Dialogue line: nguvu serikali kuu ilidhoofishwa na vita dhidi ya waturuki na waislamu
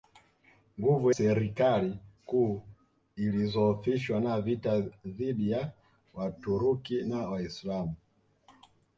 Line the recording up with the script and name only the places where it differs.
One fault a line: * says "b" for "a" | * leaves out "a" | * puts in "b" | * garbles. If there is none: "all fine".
all fine